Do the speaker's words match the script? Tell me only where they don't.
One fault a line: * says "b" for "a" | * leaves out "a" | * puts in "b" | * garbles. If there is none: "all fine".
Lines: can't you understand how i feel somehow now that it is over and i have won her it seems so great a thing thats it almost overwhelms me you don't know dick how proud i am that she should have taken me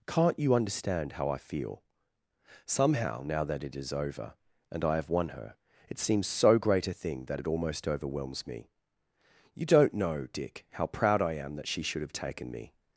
* says "that" for "thats"